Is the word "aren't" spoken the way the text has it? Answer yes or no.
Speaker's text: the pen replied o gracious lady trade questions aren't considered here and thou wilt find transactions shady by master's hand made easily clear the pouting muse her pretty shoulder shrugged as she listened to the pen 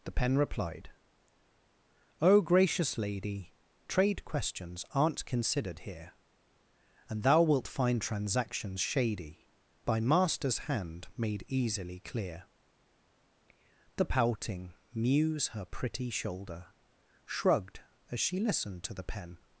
yes